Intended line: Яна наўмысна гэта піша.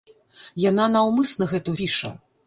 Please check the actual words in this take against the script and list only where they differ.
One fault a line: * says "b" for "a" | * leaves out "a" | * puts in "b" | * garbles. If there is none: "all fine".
all fine